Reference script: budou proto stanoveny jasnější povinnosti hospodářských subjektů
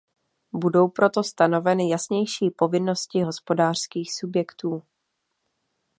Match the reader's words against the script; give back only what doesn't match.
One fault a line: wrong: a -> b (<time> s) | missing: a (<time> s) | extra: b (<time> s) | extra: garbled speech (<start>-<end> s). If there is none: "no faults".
no faults